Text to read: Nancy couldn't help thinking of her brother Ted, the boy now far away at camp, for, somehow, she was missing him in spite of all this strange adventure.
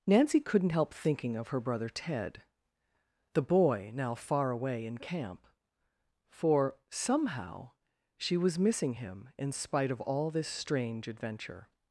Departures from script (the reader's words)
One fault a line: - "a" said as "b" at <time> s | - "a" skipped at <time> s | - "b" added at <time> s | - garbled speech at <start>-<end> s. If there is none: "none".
- "at" said as "in" at 4.9 s